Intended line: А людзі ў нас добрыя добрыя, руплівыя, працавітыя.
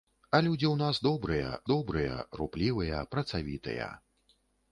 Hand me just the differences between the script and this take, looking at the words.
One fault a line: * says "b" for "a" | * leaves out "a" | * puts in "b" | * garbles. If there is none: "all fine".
all fine